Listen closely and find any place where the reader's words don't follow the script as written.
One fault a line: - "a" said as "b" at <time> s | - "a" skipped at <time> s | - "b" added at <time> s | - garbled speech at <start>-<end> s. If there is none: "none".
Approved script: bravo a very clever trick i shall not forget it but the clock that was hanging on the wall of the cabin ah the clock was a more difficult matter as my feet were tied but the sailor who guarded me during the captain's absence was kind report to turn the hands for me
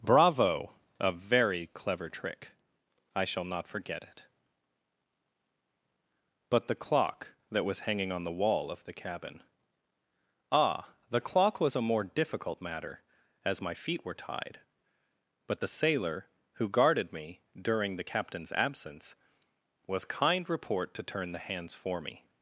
none